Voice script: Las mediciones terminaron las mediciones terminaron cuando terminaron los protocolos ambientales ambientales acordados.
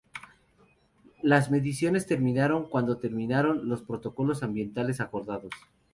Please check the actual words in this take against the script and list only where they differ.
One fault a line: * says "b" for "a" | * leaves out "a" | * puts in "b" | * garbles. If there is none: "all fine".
* leaves out "las mediciones terminaron"
* leaves out "ambientales"